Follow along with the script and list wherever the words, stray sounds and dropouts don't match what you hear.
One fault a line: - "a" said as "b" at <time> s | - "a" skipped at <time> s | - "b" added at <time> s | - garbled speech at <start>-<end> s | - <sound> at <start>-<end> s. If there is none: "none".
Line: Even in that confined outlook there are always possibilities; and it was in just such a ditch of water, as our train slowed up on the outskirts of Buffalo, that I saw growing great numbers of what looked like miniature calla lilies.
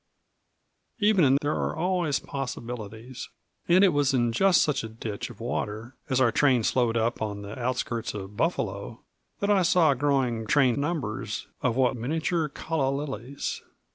- "that confined outlook" skipped at 1.4 s
- "great" said as "train" at 10.4 s
- "looked like" skipped at 11.9 s